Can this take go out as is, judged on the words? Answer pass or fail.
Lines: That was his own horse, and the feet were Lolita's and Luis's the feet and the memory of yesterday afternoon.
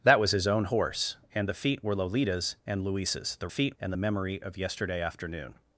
pass